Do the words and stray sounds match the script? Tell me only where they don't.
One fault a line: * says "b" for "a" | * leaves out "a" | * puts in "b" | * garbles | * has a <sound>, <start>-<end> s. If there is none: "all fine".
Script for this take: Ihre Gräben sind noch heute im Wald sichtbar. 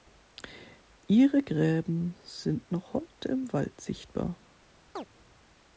* has a chirp, 5.0-5.1 s